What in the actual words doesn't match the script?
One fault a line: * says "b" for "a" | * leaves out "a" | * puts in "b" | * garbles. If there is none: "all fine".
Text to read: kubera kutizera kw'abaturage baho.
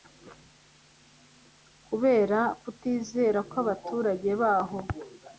all fine